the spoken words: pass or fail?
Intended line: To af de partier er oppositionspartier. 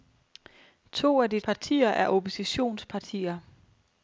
pass